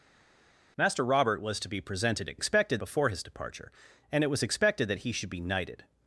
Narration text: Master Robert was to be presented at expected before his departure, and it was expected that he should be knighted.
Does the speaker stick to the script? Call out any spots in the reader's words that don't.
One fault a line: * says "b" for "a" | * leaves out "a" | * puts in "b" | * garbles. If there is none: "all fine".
all fine